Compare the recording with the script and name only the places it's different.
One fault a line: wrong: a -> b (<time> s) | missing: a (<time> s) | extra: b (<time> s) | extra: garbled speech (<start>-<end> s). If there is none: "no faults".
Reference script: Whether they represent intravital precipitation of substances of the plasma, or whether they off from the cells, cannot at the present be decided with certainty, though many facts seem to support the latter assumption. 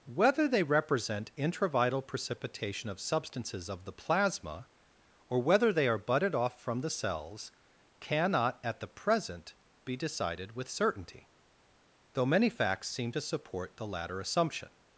extra: are budded (5.9 s)